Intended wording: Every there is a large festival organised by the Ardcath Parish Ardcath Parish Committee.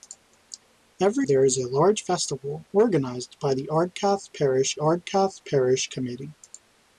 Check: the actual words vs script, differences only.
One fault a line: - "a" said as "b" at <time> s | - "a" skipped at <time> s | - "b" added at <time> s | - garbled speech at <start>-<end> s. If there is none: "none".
none